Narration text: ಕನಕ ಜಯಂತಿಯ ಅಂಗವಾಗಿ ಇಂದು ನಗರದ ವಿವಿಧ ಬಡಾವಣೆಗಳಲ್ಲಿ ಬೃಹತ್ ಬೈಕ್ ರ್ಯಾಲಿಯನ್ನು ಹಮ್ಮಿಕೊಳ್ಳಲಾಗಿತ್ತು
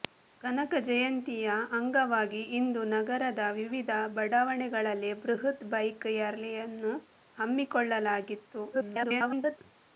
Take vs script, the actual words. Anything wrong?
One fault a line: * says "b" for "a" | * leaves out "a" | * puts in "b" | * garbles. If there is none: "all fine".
* garbles